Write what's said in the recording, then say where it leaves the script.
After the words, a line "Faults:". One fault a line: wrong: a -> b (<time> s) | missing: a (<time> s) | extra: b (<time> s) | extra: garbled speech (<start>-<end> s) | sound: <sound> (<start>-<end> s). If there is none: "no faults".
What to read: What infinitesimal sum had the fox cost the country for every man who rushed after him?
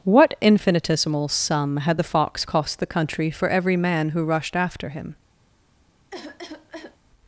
What infinitesimal sum had the fox cost the country for every man who rushed after him?
Faults:
sound: cough (6.1-7.0 s)